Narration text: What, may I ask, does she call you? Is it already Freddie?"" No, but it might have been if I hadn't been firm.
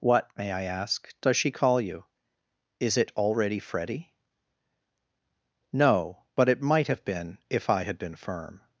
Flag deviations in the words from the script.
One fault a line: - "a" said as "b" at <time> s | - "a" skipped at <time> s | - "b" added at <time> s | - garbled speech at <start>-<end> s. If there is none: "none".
- "hadn't" said as "had" at 7.8 s